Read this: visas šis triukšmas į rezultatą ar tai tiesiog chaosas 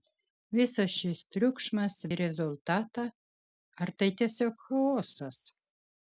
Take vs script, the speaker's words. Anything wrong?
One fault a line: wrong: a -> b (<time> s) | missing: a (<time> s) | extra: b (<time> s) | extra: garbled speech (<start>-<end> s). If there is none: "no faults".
no faults